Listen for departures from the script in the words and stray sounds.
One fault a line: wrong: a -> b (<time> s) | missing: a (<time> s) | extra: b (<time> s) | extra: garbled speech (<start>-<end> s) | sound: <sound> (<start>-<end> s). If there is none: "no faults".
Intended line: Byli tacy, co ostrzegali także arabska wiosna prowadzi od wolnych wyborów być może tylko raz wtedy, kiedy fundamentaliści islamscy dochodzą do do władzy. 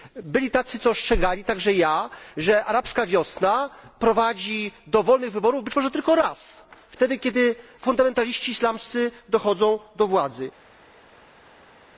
extra: ja że (1.7 s)
wrong: od -> do (4.9 s)
missing: do (10.1 s)